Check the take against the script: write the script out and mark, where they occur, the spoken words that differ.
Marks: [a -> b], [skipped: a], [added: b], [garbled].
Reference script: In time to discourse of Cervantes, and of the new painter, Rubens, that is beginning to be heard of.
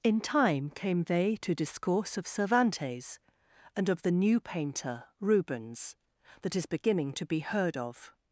In time [added: came they] to discourse of Cervantes, and of the new painter, Rubens, that is beginning to be heard of.